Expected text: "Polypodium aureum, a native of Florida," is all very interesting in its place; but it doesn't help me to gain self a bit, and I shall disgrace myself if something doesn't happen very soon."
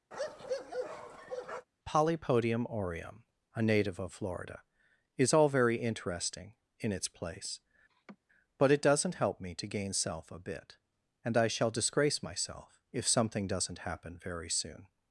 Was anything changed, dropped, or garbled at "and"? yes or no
no